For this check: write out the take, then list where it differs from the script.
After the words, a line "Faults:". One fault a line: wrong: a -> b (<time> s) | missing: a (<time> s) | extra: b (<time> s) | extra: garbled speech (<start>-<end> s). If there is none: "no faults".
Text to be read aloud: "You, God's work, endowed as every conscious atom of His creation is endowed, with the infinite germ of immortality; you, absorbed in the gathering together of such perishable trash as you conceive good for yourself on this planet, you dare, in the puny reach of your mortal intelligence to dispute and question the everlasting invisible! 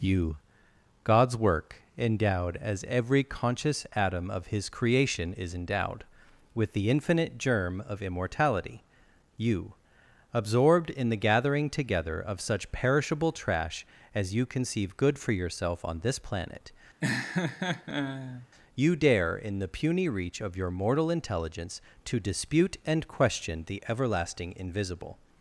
"You, God's work, endowed as every conscious atom of His creation is endowed, with the infinite germ of immortality; you, absorbed in the gathering together of such perishable trash as you conceive good for yourself on this planet, you dare, in the puny reach of your mortal intelligence to dispute and question the everlasting invisible!
Faults:
no faults